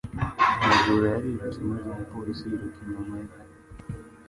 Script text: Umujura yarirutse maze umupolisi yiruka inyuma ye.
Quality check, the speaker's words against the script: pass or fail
pass